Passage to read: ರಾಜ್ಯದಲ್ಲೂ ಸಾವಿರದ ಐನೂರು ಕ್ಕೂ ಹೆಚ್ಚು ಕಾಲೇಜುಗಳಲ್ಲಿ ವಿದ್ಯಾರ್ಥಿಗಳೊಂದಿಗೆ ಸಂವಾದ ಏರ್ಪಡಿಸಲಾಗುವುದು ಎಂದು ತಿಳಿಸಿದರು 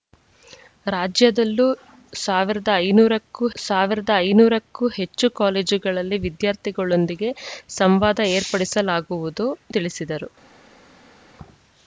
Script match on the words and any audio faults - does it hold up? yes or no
no